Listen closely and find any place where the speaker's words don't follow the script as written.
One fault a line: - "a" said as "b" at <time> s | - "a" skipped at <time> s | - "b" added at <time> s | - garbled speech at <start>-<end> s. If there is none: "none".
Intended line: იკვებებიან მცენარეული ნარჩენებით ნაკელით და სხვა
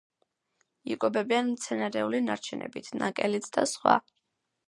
none